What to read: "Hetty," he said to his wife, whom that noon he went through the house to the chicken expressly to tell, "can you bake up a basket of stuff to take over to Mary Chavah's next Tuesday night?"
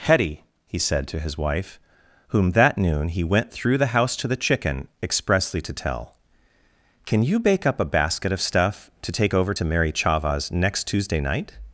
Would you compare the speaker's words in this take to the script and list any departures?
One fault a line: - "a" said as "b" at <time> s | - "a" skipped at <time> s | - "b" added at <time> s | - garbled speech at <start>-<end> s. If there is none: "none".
none